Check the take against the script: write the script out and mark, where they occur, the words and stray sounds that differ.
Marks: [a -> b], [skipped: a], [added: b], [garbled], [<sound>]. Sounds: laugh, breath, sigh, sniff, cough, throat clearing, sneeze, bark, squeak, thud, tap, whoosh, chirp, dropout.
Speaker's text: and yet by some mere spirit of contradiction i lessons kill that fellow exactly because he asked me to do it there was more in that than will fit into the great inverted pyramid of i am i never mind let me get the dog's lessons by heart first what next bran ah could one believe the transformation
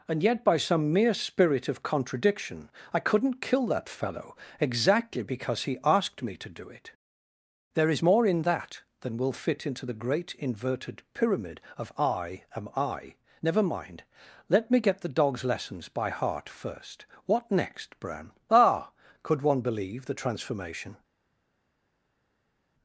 and yet by some mere spirit of contradiction i [lessons -> couldn't] kill that fellow exactly because he asked me to do it there [was -> is] more in that than will fit into the great inverted pyramid of i am i never mind let me get the dog's lessons by heart first what next bran ah could one believe the transformation